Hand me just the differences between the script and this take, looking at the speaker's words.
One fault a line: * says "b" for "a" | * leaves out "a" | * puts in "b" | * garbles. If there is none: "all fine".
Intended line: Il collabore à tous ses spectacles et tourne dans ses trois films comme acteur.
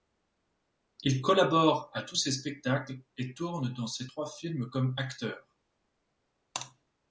all fine